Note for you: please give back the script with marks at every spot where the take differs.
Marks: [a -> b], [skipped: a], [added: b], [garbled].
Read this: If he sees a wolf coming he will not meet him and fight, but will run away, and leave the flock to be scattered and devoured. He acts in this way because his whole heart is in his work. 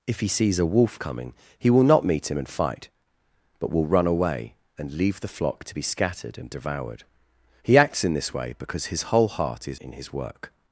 If he sees a wolf coming he will not meet him and fight, but will run away, and leave the flock to be scattered and devoured. He acts in this way because his whole heart is in his work.